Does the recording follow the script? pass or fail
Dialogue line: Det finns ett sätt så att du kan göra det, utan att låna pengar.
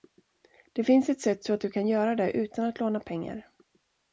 pass